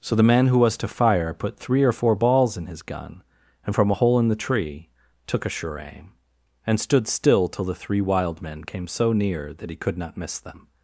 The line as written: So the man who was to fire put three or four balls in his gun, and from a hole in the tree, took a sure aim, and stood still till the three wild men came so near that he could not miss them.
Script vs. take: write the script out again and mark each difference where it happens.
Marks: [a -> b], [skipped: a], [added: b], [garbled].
So the man who was to fire put three or four balls in his gun, and from a hole in the tree, took a sure aim, and stood still till the three wild men came so near that he could not miss them.